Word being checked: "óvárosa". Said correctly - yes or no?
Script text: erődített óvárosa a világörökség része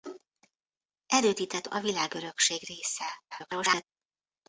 no